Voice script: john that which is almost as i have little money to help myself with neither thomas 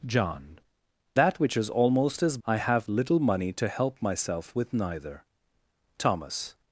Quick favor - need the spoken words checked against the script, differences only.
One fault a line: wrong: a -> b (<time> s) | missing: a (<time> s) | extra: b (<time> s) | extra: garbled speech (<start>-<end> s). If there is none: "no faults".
no faults